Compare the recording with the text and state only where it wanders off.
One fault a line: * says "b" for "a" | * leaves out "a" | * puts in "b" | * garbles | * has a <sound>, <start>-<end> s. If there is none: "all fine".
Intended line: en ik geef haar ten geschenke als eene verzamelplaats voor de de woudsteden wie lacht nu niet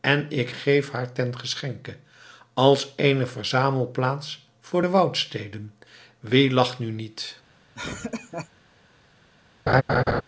* leaves out "de"
* has a laugh, 7.7-8.5 s
* has a laugh, 9.7-10.2 s